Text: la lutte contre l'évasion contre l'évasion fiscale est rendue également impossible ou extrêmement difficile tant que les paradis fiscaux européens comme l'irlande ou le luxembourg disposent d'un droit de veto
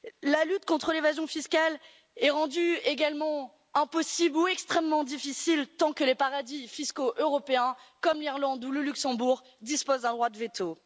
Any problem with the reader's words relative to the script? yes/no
yes